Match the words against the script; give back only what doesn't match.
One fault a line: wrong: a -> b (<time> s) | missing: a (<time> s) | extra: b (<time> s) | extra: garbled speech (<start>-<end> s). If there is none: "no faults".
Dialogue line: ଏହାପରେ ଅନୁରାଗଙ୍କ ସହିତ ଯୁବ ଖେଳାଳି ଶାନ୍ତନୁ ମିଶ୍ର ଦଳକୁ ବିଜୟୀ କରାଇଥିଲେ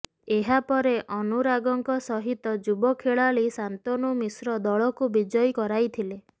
no faults